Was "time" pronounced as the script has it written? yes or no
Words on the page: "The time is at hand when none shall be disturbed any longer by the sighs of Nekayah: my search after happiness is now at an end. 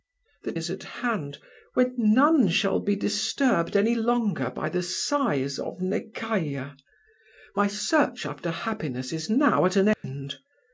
no